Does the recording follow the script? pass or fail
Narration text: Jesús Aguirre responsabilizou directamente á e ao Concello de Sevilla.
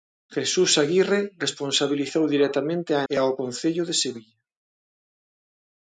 pass